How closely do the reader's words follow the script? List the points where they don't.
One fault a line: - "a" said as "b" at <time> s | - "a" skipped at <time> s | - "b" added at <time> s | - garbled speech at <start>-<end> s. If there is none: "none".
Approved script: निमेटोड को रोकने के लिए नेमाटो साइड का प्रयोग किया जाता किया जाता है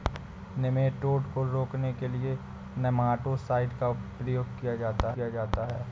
none